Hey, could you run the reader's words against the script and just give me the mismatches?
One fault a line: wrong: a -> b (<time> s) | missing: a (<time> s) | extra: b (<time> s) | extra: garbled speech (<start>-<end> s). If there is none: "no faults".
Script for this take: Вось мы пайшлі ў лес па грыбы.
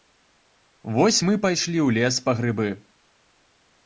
no faults